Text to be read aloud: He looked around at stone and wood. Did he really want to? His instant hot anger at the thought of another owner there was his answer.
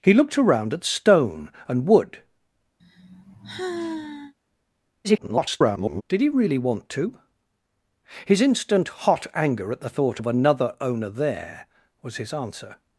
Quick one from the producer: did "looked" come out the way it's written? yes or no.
yes